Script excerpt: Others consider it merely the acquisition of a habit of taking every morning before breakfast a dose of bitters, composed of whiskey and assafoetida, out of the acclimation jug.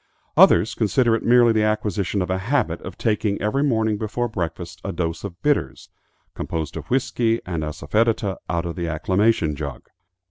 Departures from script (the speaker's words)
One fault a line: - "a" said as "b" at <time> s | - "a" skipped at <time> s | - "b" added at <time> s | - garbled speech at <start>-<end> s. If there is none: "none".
none